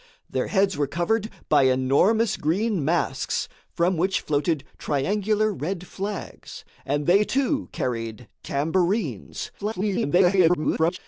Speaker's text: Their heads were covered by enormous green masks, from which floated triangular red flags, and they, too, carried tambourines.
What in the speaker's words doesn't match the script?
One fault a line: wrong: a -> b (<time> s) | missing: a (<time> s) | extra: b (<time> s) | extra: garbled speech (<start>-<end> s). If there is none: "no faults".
extra: garbled speech (9.6-11.0 s)